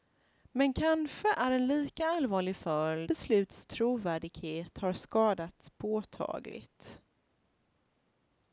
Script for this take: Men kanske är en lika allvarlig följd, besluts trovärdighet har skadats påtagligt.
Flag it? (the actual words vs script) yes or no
no